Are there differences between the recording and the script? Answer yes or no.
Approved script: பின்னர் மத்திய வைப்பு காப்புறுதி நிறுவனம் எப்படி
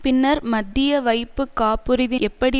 yes